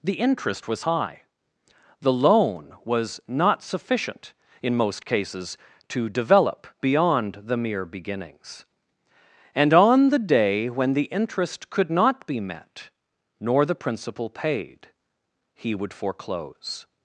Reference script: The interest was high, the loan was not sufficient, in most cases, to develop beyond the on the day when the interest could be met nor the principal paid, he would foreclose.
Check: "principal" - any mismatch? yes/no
no